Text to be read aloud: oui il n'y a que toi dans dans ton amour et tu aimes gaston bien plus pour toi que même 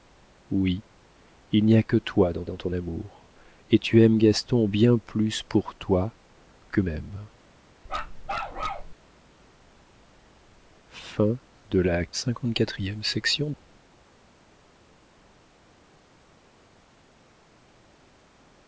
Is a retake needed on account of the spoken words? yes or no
no